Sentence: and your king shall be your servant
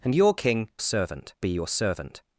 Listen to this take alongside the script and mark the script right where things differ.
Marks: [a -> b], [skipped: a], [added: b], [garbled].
and your king [shall -> servant] be your servant